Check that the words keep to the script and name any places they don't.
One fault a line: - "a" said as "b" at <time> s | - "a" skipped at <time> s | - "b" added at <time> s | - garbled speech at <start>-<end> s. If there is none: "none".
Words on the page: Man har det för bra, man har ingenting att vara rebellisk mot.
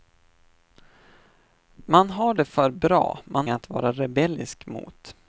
- "har ingenting" skipped at 3.5 s